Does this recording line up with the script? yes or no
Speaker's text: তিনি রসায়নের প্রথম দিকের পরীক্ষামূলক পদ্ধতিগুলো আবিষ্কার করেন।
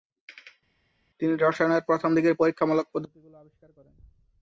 yes